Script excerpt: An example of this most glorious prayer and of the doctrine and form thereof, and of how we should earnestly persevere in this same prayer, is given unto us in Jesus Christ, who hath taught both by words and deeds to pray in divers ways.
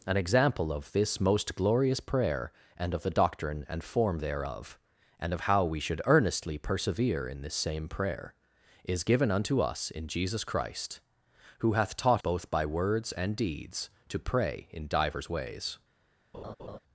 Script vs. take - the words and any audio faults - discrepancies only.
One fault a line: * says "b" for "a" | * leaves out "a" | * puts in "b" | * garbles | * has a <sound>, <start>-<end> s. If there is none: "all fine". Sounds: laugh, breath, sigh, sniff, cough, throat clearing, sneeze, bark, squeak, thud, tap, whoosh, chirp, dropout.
* has a laugh, 16.3-16.8 s